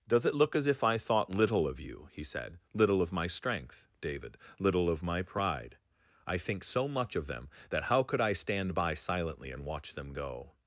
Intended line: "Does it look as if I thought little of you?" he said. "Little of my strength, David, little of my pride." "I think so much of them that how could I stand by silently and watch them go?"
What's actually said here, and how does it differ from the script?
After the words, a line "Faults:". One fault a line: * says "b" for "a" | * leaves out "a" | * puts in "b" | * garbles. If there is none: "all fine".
"Does it look as if I thought little of you?" he said. "Little of my strength, David, little of my pride." "I think so much of them that how could I stand by silently and watch them go?"
Faults:
all fine